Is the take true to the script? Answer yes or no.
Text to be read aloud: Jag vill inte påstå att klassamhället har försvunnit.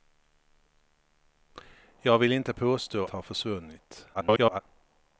no